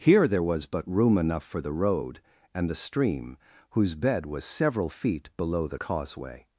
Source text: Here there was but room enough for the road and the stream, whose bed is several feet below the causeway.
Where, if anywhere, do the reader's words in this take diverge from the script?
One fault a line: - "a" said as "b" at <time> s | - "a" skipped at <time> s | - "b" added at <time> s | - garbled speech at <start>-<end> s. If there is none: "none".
- "is" said as "was" at 4.2 s